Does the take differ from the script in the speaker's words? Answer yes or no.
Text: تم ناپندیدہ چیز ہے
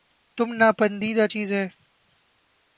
no